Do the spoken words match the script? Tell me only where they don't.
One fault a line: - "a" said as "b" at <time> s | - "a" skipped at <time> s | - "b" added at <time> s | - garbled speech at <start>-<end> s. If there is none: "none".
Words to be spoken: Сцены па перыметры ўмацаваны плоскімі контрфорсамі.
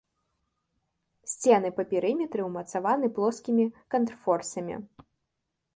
none